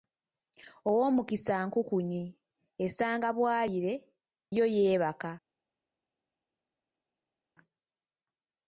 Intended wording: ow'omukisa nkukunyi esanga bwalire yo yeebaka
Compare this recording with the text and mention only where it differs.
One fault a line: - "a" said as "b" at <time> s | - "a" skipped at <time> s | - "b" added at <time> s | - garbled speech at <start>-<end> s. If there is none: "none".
none